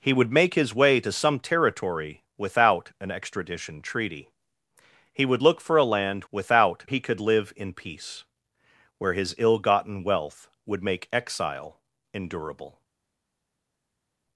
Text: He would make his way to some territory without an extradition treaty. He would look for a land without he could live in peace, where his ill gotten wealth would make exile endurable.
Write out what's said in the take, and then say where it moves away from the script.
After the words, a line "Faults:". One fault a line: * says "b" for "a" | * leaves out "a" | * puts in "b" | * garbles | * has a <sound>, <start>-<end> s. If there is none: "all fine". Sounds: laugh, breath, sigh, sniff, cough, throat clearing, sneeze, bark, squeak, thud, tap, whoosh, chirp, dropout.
He would make his way to some territory without an extradition treaty. He would look for a land without he could live in peace, where his ill gotten wealth would make exile endurable.
Faults:
all fine